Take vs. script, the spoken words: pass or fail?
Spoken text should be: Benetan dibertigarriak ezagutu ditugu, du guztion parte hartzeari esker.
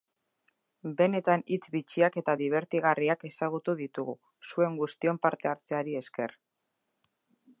fail